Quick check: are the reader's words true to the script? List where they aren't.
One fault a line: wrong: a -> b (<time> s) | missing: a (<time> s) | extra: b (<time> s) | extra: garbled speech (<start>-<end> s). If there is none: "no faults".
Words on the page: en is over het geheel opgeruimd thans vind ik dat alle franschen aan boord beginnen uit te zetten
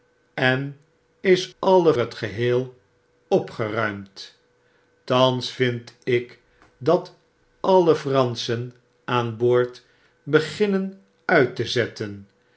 wrong: over -> alle (1.6 s)